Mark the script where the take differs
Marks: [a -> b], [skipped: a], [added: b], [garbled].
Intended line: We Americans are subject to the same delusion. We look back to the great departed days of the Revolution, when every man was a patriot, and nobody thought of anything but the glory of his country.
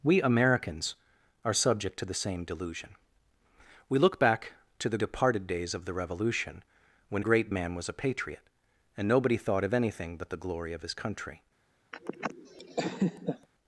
We Americans are subject to the same delusion. We look back to the [skipped: great] departed days of the Revolution, when [every -> great] man was a patriot, and nobody thought of anything but the glory of his country.